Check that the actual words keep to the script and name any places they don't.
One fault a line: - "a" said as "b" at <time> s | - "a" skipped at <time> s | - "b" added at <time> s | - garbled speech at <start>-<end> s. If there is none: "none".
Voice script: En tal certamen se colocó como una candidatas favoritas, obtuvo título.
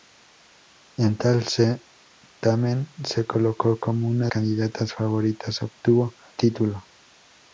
none